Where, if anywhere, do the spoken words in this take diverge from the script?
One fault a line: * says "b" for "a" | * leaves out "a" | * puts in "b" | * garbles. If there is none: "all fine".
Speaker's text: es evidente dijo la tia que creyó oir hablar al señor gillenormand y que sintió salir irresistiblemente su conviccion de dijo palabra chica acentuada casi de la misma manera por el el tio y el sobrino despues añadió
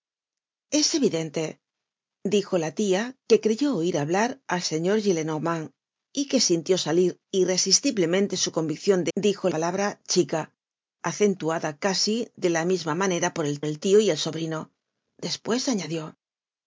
all fine